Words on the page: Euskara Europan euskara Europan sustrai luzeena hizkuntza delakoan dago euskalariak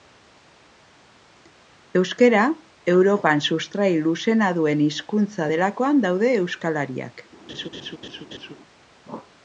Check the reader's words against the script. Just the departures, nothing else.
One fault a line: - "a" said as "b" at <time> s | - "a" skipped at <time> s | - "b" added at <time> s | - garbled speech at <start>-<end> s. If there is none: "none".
- "euskara Europan" skipped at 3.4 s
- "duen" added at 4.6 s
- "dago" said as "daude" at 6.1 s